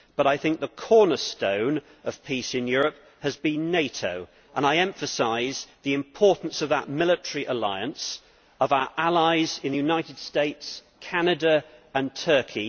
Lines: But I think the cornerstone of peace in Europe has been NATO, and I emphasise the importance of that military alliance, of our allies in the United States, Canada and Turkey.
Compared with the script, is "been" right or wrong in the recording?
right